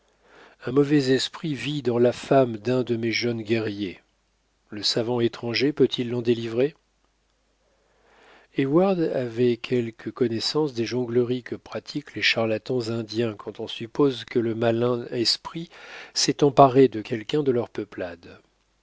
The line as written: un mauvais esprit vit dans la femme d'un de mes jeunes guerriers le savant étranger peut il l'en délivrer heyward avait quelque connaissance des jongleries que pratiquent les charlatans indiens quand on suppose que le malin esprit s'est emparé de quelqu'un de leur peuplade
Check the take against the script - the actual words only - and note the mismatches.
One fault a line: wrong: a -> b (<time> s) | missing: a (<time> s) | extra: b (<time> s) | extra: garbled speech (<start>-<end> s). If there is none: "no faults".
no faults